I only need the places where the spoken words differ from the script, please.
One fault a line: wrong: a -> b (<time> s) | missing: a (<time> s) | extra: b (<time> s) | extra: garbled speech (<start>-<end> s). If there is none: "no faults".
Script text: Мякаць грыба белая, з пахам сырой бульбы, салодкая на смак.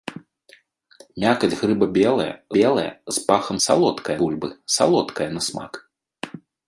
extra: белая (2.6 s)
wrong: сырой -> салодкая (3.7 s)